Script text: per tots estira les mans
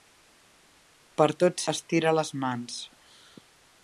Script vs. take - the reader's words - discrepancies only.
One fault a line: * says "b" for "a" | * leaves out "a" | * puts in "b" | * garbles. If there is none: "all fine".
all fine